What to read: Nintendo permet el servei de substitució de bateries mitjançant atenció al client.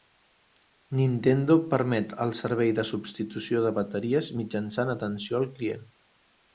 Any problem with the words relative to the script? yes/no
no